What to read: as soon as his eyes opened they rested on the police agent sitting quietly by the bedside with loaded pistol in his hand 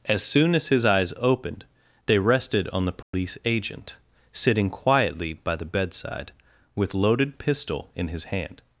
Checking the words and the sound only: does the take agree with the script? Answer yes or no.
no